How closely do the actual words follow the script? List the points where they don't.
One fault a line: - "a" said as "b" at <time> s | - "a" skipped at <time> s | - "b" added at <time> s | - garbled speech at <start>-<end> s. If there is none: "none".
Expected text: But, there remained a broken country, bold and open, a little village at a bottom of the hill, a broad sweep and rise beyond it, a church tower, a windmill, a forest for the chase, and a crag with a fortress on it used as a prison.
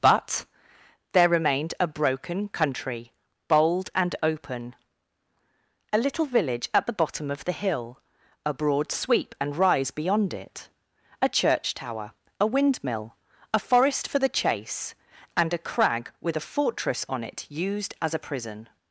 - "a" said as "the" at 6.9 s